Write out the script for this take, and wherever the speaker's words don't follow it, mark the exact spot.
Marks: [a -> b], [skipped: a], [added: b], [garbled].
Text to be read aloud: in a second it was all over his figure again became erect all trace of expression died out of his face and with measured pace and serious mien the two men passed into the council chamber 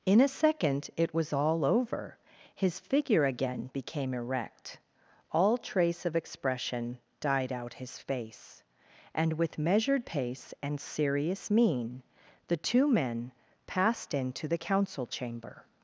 in a second it was all over his figure again became erect all trace of expression died out [skipped: of] his face and with measured pace and serious mien the two men passed into the council chamber